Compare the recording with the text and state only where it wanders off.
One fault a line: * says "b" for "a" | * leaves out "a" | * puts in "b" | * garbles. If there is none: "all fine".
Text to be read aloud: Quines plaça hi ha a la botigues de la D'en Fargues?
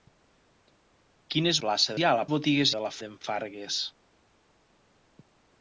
all fine